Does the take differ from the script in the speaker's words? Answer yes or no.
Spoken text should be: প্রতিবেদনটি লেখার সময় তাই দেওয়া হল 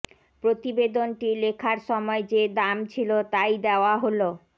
yes